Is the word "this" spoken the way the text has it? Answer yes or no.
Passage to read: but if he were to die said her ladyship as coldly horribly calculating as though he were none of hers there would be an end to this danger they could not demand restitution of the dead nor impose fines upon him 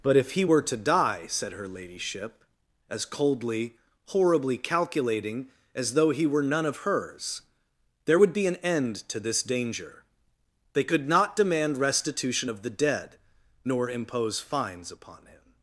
yes